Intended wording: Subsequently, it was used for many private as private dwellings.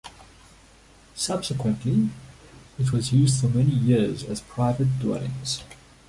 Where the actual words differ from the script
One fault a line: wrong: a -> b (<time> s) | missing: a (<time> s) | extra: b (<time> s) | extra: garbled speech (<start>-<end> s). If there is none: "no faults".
wrong: private -> years (3.7 s)